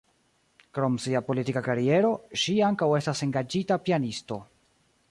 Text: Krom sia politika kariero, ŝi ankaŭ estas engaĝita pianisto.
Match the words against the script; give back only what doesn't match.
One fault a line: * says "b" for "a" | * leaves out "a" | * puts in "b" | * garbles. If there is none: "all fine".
all fine